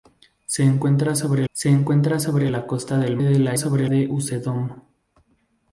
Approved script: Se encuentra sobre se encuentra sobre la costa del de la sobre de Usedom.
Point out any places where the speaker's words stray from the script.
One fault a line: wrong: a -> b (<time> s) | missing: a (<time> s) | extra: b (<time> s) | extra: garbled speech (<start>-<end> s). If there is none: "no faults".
no faults